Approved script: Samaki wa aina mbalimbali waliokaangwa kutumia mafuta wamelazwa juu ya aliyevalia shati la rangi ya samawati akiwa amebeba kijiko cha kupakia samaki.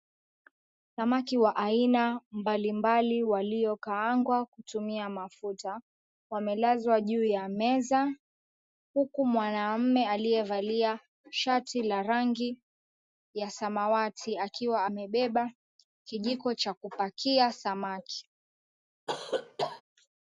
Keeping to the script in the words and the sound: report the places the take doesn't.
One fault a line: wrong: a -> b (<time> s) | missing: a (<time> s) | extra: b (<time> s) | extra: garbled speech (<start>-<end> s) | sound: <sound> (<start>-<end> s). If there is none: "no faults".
extra: meza huku mwanamume (7.5 s)
sound: cough (19.1-19.8 s)